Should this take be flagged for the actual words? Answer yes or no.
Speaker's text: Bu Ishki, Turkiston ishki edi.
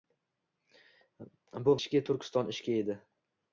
no